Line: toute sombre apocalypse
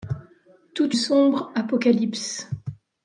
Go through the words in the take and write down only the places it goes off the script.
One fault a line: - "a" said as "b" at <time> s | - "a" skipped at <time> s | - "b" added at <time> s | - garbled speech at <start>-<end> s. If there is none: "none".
none